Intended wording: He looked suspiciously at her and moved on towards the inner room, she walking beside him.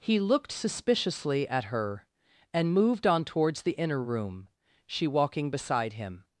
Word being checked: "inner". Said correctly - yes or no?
yes